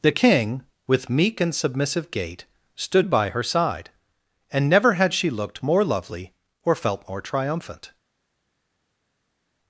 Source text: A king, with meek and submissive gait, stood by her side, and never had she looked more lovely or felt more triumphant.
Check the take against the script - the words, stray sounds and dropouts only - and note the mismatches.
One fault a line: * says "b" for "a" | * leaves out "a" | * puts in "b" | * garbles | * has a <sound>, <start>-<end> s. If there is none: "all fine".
* says "The" for "A"